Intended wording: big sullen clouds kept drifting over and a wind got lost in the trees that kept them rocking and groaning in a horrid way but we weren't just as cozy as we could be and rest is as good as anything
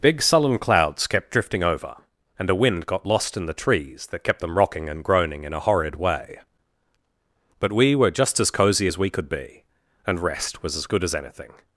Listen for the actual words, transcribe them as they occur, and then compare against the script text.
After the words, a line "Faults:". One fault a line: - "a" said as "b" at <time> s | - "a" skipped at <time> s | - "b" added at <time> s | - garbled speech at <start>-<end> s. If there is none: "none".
big sullen clouds kept drifting over and a wind got lost in the trees that kept them rocking and groaning in a horrid way but we were just as cozy as we could be and rest was as good as anything
Faults:
- "weren't" said as "were" at 7.9 s
- "is" said as "was" at 10.6 s